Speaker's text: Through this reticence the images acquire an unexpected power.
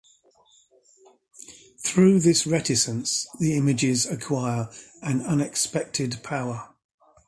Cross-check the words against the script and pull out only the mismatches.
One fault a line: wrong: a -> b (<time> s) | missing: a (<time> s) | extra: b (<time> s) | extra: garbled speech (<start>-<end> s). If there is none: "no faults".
no faults